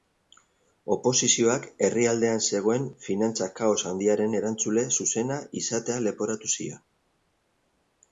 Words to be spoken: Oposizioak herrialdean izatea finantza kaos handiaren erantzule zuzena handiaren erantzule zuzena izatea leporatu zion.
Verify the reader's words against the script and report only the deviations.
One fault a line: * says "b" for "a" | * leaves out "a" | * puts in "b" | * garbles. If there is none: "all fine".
* says "zegoen" for "izatea"
* leaves out "handiaren erantzule zuzena"